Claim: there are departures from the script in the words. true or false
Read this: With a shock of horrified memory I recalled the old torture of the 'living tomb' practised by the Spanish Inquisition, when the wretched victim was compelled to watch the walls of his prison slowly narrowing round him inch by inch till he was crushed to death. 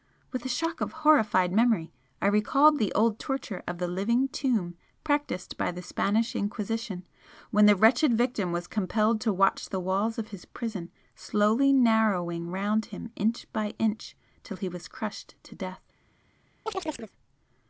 false